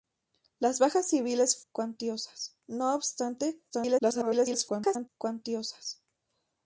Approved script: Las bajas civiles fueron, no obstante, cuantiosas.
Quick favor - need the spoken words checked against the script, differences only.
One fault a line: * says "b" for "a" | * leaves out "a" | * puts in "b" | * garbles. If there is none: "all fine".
* says "cuantiosas" for "fueron"
* garbles